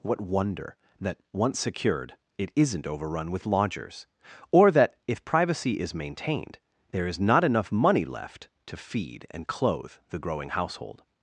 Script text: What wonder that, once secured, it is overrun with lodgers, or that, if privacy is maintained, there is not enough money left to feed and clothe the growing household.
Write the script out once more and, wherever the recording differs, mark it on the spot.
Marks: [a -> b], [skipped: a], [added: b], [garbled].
What wonder that, once secured, it [is -> isn't] overrun with lodgers, or that, if privacy is maintained, there is not enough money left to feed and clothe the growing household.